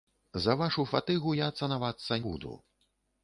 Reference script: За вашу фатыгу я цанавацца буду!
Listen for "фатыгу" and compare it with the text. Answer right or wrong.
right